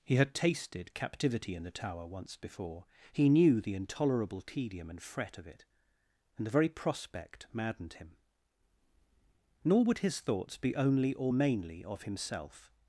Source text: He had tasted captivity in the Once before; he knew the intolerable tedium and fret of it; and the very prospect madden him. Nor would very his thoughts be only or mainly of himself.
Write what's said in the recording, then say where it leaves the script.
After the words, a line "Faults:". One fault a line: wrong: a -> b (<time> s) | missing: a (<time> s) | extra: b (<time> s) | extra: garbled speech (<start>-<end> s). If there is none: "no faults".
He had tasted captivity in the Tower once before; he knew the intolerable tedium and fret of it; and the very prospect maddened him. Nor would his thoughts be only or mainly of himself.
Faults:
extra: Tower (1.7 s)
wrong: madden -> maddened (7.5 s)
missing: very (10.0 s)